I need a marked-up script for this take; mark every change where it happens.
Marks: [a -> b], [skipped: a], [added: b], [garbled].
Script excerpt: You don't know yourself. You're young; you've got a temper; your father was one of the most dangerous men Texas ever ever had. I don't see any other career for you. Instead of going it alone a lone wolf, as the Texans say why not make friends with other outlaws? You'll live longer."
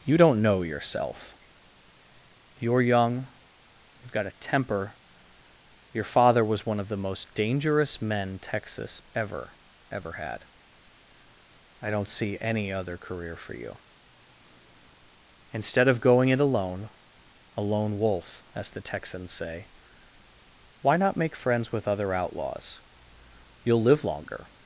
You don't know yourself. You're young; you've got a temper; your father was one of the most dangerous men Texas ever ever had. I don't see any other career for you. Instead of going it alone a lone wolf, as the Texans say why not make friends with other outlaws? You'll live longer."